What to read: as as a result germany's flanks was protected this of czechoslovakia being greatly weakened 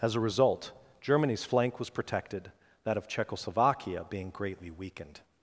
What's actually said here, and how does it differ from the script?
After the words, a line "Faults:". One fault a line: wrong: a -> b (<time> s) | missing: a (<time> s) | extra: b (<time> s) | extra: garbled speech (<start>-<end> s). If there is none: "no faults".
as a result germany's flank was protected that of czechoslovakia being greatly weakened
Faults:
missing: as (0.1 s)
wrong: flanks -> flank (1.4 s)
wrong: this -> that (2.8 s)